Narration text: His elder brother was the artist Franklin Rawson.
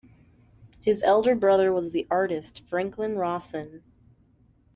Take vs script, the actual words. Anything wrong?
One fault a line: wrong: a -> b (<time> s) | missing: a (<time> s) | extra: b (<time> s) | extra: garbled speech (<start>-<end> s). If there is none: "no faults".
no faults